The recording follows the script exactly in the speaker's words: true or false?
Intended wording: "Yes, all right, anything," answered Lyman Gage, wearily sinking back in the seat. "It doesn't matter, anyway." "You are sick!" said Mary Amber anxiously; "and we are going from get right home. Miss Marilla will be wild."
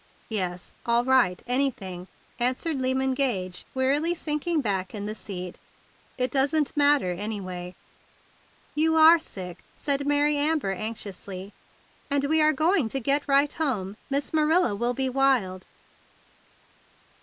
false